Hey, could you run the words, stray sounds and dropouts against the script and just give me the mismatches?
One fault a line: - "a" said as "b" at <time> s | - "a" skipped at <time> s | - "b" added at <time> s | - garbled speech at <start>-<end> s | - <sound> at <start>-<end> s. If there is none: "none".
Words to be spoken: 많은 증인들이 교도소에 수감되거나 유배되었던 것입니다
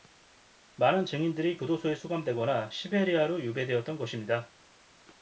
- "시베리아로" added at 2.7 s